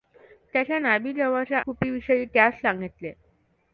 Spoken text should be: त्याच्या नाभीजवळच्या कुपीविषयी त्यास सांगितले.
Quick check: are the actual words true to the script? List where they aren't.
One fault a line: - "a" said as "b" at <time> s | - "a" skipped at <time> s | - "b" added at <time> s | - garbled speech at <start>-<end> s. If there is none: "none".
none